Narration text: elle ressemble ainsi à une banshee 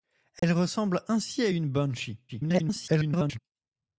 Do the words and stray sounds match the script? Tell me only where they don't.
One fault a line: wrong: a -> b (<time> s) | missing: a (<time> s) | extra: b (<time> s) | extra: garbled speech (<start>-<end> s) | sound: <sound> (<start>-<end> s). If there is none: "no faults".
sound: dropout (0.4-0.4 s)
extra: garbled speech (2.3-3.4 s)